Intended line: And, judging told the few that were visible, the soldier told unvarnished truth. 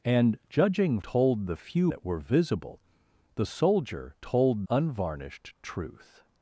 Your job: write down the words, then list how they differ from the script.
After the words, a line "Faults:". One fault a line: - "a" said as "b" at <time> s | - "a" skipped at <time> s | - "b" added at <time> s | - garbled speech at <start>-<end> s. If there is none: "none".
And, judging told the few that were visible, the soldier told unvarnished truth.
Faults:
none